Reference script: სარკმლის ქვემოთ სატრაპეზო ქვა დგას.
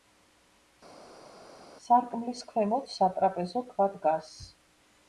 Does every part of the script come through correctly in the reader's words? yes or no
yes